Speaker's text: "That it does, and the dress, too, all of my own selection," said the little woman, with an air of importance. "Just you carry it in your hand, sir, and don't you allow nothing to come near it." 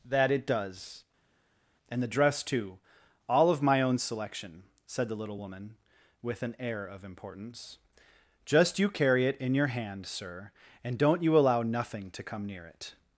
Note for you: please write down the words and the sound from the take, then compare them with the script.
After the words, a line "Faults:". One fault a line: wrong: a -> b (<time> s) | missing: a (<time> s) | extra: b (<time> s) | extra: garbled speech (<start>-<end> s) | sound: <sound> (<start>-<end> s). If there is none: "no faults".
"That it does, and the dress, too, all of my own selection," said the little woman, with an air of importance. "Just you carry it in your hand, sir, and don't you allow nothing to come near it."
Faults:
no faults